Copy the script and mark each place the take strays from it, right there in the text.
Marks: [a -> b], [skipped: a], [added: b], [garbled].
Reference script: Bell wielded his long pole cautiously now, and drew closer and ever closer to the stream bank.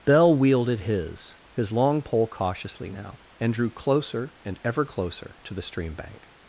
Bell wielded his [added: his] long pole cautiously now, and drew closer and ever closer to the stream bank.